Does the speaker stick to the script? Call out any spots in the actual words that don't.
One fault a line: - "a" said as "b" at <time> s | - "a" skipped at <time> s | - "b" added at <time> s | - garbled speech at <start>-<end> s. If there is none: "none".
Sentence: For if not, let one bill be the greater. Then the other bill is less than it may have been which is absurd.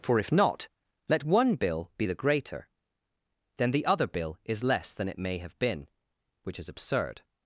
none